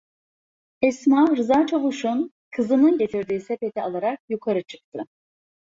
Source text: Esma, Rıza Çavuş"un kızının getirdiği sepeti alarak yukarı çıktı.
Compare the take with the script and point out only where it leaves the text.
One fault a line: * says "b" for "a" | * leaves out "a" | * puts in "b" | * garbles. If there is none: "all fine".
all fine